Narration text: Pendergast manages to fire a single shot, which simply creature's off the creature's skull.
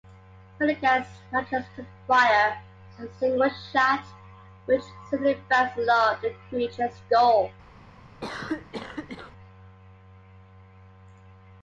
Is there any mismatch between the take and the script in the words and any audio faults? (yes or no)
yes